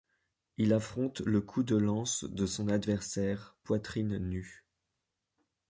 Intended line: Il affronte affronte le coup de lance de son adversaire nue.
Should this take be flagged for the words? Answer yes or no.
yes